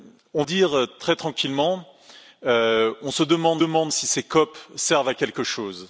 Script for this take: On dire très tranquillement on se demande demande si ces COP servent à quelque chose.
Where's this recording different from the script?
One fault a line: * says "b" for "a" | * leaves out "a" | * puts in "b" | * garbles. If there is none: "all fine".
all fine